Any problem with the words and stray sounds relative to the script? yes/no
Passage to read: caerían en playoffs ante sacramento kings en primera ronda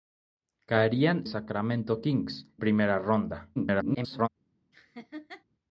yes